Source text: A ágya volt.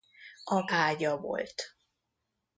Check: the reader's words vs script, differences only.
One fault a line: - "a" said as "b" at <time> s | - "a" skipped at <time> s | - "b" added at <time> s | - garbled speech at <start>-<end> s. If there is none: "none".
none